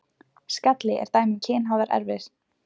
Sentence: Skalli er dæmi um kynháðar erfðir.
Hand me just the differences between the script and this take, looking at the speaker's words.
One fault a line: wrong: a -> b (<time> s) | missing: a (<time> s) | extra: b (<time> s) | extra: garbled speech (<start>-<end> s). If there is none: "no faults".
no faults